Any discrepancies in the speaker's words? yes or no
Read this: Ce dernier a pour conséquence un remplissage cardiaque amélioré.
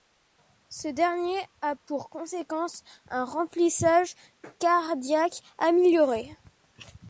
no